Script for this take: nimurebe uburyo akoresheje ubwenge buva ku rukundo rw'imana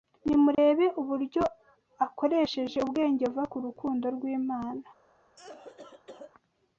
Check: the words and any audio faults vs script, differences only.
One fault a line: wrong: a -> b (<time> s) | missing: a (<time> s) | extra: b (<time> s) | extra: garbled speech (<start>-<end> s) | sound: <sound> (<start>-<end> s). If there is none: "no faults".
sound: dropout (0.5-0.6 s)
sound: cough (5.4-6.3 s)